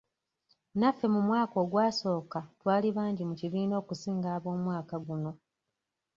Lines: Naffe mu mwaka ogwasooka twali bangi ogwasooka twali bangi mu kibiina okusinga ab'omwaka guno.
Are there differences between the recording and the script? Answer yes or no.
yes